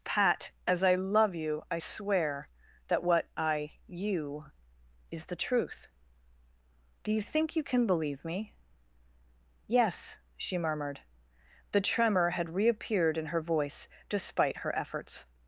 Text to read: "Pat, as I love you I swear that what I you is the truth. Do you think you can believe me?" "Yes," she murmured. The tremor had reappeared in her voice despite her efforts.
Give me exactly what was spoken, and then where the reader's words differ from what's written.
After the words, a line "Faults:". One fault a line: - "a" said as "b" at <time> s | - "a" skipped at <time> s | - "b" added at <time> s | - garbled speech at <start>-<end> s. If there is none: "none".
"Pat, as I love you I swear that what I you is the truth. Do you think you can believe me?" "Yes," she murmured. The tremor had reappeared in her voice despite her efforts.
Faults:
none